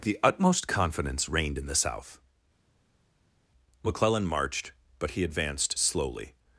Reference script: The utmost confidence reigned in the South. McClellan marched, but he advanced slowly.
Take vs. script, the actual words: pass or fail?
pass